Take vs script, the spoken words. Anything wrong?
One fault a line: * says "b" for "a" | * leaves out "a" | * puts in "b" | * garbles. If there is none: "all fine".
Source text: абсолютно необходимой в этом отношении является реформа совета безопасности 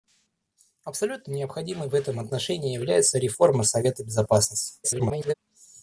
* garbles